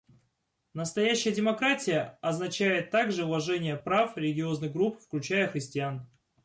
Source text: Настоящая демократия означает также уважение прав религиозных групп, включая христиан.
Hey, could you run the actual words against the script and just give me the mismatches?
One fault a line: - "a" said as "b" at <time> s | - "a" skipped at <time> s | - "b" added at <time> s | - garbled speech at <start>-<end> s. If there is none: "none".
none